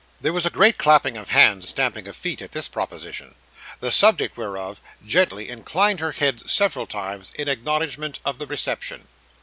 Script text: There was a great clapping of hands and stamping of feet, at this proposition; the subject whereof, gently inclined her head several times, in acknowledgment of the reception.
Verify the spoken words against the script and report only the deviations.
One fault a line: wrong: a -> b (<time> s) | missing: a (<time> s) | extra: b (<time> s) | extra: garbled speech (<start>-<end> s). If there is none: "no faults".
missing: and (1.6 s)